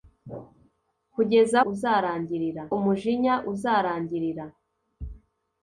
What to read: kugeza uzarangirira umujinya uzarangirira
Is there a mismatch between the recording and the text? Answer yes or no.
no